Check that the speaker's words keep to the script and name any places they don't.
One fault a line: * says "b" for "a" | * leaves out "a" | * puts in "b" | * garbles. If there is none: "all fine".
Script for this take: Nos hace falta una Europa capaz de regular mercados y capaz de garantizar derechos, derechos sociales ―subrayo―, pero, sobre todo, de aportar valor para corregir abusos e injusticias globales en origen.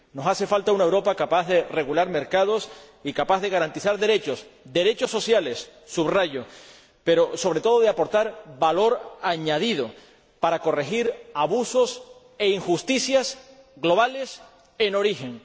* puts in "añadido"